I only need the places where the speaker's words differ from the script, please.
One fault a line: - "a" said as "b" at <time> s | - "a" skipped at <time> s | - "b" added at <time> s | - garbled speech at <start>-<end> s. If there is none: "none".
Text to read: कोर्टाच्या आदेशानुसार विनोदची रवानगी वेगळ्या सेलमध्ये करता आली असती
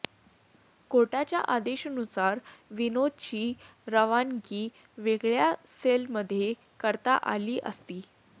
none